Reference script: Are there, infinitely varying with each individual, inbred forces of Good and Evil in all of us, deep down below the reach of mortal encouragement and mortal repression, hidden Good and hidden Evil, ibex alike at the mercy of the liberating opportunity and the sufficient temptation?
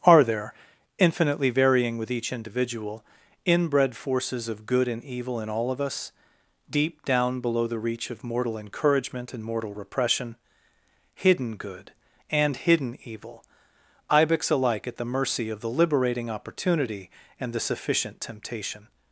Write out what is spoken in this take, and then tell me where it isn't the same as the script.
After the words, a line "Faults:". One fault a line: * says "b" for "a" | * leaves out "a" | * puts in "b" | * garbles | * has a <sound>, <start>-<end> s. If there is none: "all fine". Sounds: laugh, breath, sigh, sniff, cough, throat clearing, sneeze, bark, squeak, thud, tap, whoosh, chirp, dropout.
Are there, infinitely varying with each individual, inbred forces of Good and Evil in all of us, deep down below the reach of mortal encouragement and mortal repression, hidden Good and hidden Evil, ibex alike at the mercy of the liberating opportunity and the sufficient temptation?
Faults:
all fine